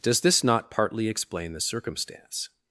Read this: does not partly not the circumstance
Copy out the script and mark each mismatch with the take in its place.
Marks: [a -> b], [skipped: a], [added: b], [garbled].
does [added: this] not partly [not -> explain] the circumstance